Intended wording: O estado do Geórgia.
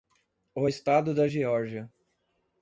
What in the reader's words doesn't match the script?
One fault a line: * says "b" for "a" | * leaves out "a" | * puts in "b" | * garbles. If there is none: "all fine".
* says "da" for "do"